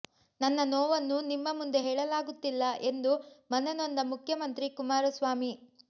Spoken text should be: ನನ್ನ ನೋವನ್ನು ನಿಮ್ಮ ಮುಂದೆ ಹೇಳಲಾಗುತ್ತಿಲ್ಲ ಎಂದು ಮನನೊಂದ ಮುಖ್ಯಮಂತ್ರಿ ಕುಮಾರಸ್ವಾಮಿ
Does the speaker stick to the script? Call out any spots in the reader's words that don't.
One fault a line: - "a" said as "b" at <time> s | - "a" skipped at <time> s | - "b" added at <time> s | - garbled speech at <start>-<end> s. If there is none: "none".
none